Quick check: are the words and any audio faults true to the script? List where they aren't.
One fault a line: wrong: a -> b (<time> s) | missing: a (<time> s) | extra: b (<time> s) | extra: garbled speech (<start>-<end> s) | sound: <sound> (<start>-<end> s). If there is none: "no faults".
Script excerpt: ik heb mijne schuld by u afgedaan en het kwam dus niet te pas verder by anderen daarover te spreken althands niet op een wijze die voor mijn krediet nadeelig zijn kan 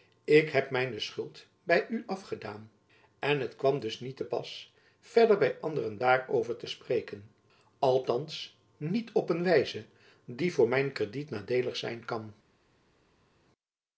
no faults